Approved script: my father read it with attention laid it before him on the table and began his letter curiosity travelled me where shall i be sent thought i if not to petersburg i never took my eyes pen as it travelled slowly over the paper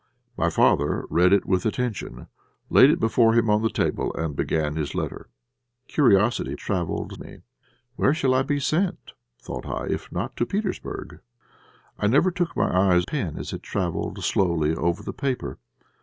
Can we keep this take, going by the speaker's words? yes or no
yes